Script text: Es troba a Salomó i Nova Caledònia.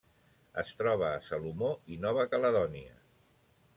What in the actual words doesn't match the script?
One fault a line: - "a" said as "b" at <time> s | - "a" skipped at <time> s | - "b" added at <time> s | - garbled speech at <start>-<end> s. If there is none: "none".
none